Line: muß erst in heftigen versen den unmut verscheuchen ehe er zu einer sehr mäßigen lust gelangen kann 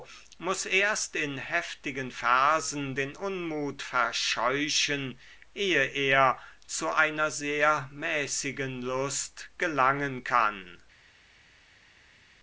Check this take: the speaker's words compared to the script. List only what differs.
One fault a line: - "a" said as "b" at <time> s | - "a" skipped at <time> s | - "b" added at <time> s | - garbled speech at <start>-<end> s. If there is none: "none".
none